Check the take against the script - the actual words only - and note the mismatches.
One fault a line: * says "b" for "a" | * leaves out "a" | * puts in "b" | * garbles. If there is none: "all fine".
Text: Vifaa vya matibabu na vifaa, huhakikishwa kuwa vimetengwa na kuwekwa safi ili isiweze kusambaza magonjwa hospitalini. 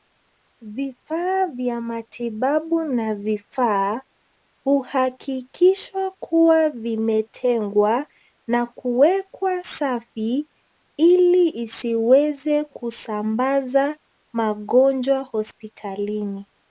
all fine